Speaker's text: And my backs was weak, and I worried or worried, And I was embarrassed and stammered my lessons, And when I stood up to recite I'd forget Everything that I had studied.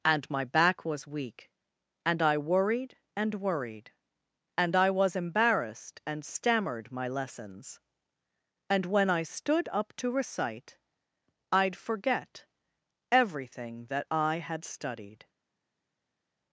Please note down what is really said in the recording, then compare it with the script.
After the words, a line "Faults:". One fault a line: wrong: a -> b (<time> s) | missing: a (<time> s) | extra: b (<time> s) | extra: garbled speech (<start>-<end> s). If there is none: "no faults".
And my back was weak, and I worried and worried, And I was embarrassed and stammered my lessons, And when I stood up to recite I'd forget Everything that I had studied.
Faults:
wrong: backs -> back (0.4 s)
wrong: or -> and (3.1 s)